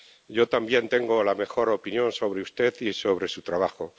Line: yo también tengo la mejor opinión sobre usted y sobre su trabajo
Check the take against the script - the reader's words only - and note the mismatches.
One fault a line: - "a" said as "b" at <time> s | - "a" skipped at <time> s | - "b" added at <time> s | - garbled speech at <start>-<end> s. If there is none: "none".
none